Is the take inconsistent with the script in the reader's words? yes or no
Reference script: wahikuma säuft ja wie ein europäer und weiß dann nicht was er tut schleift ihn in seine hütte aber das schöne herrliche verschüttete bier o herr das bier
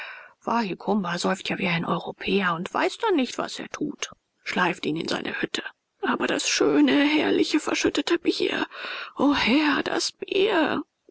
no